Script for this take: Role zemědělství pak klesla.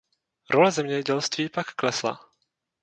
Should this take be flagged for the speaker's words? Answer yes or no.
no